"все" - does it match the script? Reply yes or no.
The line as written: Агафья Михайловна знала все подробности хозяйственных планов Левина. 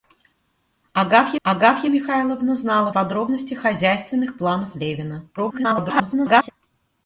no